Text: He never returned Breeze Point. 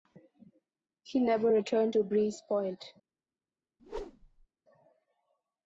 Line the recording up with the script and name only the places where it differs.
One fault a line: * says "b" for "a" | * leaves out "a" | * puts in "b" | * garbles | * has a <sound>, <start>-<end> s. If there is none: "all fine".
* puts in "to"
* has a whoosh, 3.8-4.5 s